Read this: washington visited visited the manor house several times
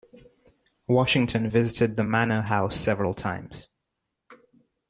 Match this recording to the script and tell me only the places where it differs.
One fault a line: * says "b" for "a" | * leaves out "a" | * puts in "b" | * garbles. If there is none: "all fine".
* leaves out "visited"